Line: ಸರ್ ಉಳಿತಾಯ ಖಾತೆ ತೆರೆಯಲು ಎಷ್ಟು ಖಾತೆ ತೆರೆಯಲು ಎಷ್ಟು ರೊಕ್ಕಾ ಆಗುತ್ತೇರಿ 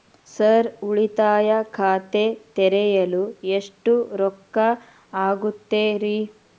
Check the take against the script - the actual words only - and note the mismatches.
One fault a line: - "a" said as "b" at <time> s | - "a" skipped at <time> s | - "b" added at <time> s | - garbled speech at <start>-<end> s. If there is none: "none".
- "ಖಾತೆ ತೆರೆಯಲು ಎಷ್ಟು" skipped at 3.9 s